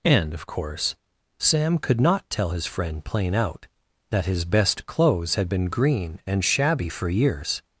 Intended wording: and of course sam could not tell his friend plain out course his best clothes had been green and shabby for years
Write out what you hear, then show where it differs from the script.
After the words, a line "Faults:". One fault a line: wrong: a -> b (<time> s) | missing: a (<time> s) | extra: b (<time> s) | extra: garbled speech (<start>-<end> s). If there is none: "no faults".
and of course sam could not tell his friend plain out that his best clothes had been green and shabby for years
Faults:
wrong: course -> that (4.1 s)